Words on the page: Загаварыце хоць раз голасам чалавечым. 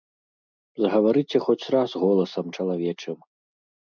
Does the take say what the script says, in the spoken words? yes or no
yes